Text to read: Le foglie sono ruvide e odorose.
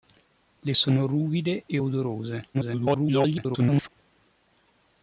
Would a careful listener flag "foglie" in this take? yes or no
yes